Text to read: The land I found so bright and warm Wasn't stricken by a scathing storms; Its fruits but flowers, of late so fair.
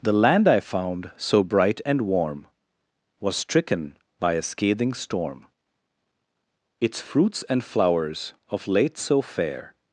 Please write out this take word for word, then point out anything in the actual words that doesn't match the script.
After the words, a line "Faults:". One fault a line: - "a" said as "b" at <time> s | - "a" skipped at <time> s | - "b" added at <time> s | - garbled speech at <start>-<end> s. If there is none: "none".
The land I found so bright and warm Was stricken by a scathing storm; Its fruits and flowers, of late so fair.
Faults:
- "Wasn't" said as "Was" at 3.2 s
- "storms" said as "storm" at 4.9 s
- "but" said as "and" at 7.5 s